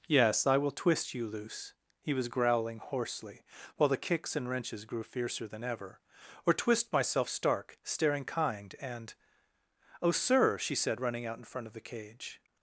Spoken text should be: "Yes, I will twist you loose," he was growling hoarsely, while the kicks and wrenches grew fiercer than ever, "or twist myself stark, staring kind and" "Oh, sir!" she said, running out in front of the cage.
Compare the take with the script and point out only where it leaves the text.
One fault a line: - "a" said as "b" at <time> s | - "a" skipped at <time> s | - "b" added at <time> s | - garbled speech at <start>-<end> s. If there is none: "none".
none